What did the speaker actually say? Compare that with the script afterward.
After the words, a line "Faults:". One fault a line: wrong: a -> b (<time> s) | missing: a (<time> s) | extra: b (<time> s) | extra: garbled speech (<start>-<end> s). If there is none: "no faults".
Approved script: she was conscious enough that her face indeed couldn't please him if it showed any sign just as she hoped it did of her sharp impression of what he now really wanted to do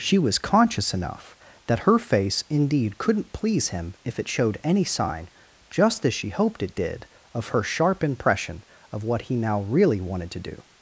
she was conscious enough that her face indeed couldn't please him if it showed any sign just as she hoped it did of her sharp impression of what he now really wanted to do
Faults:
no faults